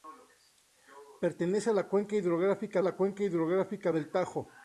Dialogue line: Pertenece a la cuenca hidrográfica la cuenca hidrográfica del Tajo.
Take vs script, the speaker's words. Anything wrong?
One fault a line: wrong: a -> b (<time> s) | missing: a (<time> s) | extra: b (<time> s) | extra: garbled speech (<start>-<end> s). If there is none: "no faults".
no faults